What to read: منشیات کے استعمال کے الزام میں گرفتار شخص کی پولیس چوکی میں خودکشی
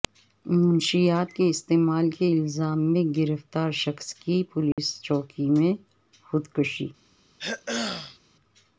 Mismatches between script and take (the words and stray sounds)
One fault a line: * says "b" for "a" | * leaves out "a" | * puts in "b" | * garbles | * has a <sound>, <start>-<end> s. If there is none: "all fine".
* has a dropout, 4.7-4.8 s
* has a throat clearing, 7.4-8.2 s